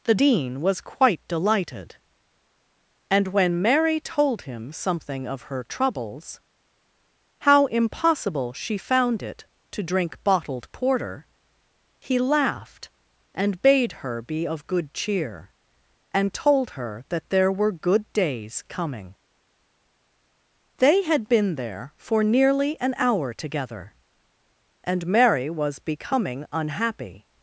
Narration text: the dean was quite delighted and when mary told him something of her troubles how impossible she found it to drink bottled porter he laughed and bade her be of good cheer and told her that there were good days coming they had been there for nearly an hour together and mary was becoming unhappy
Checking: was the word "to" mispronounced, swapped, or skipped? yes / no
no